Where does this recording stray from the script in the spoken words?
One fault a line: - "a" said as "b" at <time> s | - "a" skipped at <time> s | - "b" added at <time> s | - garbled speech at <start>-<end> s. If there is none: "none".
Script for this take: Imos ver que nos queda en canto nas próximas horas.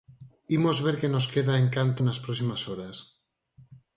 none